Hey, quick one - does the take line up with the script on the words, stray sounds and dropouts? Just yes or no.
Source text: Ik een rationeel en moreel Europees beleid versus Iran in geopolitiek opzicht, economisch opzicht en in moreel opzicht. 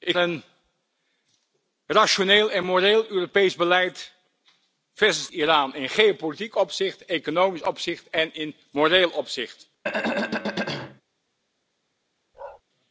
no